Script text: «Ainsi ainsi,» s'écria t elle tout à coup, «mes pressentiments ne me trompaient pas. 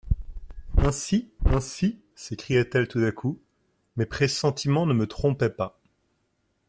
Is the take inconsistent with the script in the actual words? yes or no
no